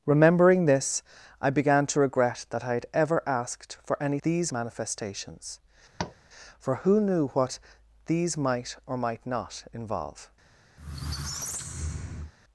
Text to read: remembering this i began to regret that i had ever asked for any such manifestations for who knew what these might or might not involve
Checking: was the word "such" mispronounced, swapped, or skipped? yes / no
yes